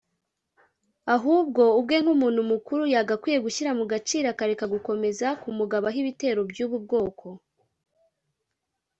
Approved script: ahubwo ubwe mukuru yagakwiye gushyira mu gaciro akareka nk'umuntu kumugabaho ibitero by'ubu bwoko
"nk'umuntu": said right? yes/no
no